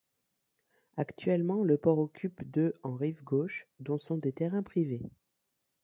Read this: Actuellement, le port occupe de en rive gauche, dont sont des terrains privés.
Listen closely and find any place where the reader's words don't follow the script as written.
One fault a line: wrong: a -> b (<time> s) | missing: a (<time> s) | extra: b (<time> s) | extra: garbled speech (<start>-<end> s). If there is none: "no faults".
no faults